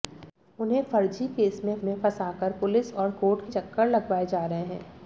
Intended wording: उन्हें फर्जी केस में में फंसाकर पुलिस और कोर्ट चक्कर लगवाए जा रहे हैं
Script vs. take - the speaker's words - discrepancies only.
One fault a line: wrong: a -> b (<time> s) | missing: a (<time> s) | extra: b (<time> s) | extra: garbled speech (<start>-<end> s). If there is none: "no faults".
no faults